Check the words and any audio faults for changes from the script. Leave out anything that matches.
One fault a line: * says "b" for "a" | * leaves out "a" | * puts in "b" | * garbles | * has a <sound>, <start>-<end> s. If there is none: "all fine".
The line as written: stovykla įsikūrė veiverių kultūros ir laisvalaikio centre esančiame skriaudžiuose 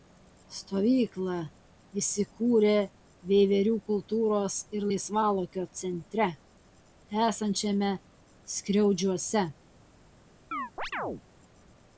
* has a chirp, 10.5-11.2 s